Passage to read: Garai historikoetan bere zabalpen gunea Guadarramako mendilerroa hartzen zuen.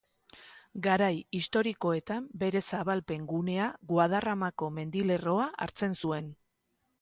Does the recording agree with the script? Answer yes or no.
yes